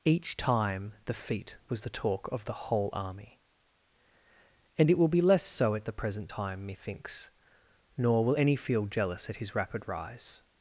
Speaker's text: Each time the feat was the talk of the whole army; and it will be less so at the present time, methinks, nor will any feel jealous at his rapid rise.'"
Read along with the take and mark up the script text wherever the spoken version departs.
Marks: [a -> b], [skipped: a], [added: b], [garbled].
Each time the feat was the talk of the whole army; and it will be less so at the present time, methinks, nor will any feel jealous at his rapid rise.'"